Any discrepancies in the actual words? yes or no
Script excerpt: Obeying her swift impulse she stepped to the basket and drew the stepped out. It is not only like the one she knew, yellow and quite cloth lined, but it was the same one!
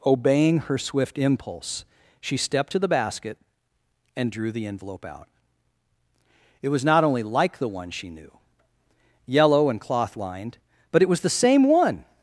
yes